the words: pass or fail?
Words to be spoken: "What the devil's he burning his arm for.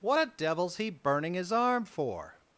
fail